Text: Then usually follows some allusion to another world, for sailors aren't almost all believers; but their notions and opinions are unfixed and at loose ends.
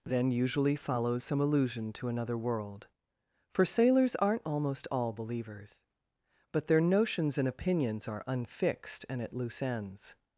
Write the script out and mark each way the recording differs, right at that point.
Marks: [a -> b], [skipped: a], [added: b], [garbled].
Then usually follows some allusion to another world, for sailors aren't almost all believers; but their notions and opinions are unfixed and at loose ends.